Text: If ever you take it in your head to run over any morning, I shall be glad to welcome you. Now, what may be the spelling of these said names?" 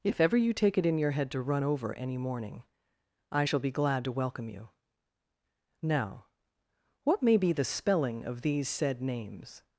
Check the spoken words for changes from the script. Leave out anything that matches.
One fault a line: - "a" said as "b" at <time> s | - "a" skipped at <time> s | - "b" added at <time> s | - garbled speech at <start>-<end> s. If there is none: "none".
none